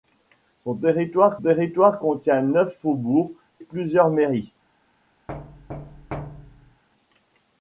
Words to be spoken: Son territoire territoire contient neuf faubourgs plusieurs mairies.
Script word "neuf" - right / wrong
right